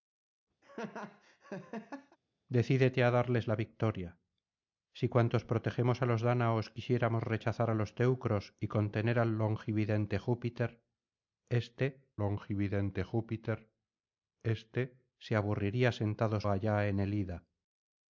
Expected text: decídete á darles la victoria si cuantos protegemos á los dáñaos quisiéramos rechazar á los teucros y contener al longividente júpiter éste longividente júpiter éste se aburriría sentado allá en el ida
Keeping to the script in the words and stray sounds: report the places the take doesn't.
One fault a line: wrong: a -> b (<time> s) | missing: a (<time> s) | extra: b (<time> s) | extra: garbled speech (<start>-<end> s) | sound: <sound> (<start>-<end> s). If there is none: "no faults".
sound: laugh (0.6-2.2 s)